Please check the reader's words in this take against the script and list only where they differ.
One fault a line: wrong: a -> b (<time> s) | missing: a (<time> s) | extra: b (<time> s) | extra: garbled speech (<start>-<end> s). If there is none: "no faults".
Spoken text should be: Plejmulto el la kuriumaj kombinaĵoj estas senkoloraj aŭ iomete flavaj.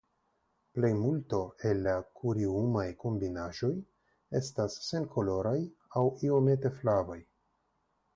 no faults